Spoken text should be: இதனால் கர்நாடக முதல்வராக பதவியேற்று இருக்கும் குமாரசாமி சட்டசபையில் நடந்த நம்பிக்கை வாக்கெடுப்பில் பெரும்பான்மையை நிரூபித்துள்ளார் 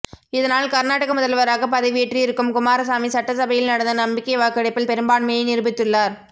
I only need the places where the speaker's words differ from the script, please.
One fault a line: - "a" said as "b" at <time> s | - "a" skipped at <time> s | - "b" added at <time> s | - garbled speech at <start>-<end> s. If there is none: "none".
none